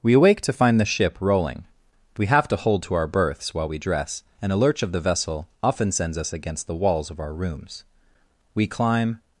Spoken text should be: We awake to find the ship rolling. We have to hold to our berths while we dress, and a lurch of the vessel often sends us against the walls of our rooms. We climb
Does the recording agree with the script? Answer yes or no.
yes